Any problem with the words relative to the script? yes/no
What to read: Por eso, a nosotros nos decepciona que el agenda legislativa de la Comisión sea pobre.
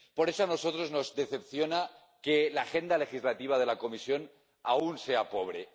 yes